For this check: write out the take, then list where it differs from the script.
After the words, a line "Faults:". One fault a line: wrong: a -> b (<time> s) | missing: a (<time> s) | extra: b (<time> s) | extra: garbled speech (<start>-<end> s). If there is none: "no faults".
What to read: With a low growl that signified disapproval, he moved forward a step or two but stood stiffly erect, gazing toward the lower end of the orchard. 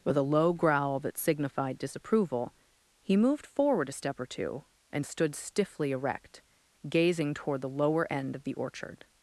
With a low growl that signified disapproval, he moved forward a step or two and stood stiffly erect, gazing toward the lower end of the orchard.
Faults:
wrong: but -> and (4.9 s)